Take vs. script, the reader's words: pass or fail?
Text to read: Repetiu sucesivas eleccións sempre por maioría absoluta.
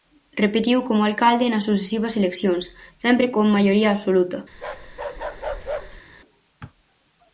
fail